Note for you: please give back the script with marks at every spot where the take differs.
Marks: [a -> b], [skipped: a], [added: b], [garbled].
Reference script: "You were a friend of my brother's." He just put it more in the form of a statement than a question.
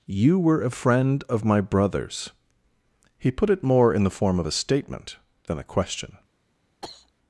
"You were a friend of my brother's." He [skipped: just] put it more in the form of a statement than a question.